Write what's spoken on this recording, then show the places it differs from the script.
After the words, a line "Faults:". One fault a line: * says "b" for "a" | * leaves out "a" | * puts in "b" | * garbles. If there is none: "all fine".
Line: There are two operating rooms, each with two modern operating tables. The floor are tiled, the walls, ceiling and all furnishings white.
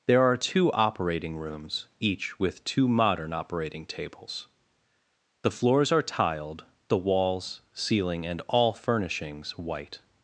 There are two operating rooms, each with two modern operating tables. The floors are tiled, the walls, ceiling and all furnishings white.
Faults:
* says "floors" for "floor"